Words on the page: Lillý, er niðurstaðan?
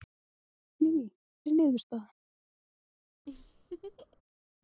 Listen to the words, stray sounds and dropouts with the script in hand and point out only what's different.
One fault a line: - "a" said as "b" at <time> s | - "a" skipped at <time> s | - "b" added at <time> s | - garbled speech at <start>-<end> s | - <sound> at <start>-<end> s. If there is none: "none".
- laugh at 3.3-4.2 s